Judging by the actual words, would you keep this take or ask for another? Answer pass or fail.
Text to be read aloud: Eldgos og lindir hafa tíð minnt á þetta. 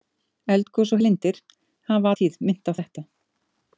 pass